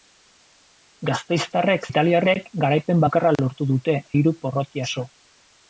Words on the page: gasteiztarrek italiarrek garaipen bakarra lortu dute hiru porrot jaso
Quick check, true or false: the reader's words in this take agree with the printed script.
true